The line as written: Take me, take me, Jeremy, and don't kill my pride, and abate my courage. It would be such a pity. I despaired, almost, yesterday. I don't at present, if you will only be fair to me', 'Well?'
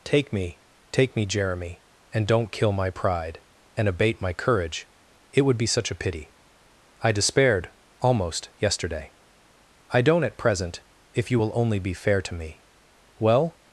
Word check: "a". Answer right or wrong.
right